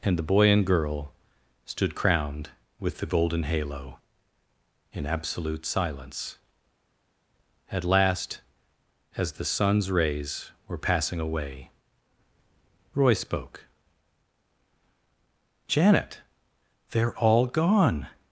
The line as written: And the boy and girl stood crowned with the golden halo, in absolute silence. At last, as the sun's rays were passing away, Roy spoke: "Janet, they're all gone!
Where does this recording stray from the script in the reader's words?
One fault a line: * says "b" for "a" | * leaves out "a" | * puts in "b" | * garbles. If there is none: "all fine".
all fine